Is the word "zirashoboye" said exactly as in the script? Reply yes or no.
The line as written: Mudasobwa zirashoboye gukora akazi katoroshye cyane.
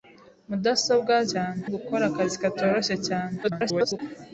no